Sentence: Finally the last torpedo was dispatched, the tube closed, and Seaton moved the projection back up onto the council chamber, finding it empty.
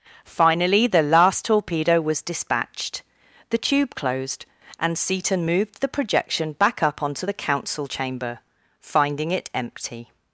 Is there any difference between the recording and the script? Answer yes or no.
no